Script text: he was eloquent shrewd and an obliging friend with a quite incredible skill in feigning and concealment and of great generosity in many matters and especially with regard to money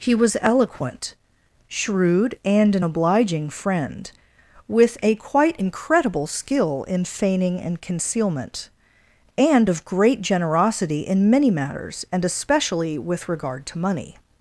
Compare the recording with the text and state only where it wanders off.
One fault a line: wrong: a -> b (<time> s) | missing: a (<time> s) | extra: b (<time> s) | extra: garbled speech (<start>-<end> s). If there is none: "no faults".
no faults